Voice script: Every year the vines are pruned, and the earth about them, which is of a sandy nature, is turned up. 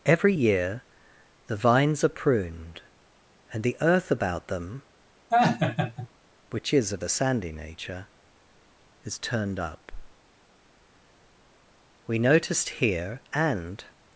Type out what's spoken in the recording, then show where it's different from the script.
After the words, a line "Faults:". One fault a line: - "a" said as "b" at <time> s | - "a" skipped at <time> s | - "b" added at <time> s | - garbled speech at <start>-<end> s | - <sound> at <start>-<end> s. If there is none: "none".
Every year the vines are pruned, and the earth about them, which is of a sandy nature, is turned up. We noticed here and
Faults:
- laugh at 5.3-6.1 s
- "We noticed here and" added at 12.1 s